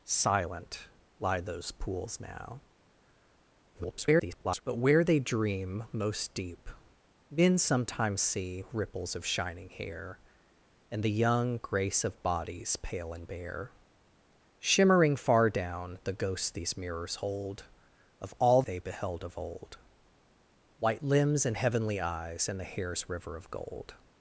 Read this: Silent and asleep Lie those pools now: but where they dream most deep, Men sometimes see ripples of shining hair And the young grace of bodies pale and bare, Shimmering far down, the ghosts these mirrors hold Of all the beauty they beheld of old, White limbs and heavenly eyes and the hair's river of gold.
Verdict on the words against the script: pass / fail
fail